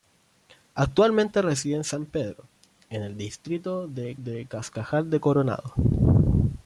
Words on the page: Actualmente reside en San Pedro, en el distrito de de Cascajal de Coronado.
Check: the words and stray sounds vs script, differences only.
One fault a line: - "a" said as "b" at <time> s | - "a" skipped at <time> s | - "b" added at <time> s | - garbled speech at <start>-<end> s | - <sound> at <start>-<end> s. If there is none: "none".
none